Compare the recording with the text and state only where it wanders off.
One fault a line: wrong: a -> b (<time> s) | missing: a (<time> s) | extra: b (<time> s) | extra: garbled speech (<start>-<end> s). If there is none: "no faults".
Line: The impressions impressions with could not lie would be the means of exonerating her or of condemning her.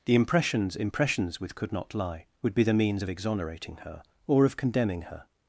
no faults